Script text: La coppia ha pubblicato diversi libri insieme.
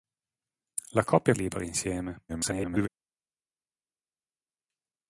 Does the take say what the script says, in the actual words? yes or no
no